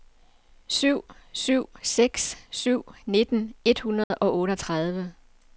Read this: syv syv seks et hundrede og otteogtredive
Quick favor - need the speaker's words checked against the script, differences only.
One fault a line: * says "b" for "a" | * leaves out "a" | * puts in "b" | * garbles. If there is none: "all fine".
* puts in "syv nitten"